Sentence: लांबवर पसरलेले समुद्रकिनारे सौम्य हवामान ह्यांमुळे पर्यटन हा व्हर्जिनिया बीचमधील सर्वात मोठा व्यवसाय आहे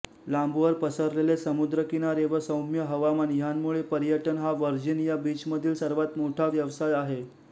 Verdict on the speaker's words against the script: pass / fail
fail